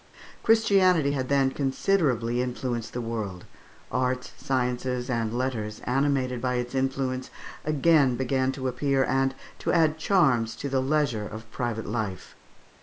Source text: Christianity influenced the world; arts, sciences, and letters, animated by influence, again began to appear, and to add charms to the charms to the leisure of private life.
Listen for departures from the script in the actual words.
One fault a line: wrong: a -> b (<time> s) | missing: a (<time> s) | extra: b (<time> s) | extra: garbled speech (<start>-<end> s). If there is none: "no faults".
extra: had then considerably (1.1 s)
extra: its (6.5 s)
missing: charms to the (10.8 s)